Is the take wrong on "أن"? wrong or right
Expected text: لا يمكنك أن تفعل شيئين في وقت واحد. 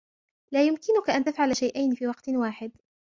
right